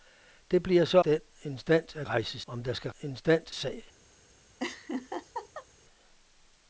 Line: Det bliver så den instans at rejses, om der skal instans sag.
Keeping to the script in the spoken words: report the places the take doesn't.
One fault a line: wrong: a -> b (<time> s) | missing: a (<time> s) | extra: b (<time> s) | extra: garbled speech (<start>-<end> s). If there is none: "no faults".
no faults